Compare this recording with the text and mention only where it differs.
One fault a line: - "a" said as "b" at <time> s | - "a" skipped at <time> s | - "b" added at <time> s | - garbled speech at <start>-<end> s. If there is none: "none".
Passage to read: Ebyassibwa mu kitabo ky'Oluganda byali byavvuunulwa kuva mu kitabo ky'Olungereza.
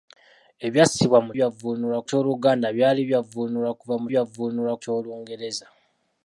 - "kitabo" said as "byavvuunulwa" at 1.4 s
- "kitabo" said as "byavvuunulwa" at 4.1 s